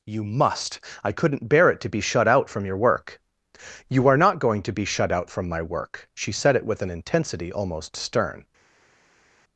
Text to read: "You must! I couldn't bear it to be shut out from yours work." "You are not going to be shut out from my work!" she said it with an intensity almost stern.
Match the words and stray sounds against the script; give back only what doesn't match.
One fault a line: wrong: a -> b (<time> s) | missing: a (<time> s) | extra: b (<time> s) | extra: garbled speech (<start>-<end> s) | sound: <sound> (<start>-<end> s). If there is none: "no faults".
wrong: yours -> your (2.6 s)